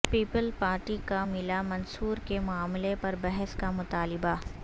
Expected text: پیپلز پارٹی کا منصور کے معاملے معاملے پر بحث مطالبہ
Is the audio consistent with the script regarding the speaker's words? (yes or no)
no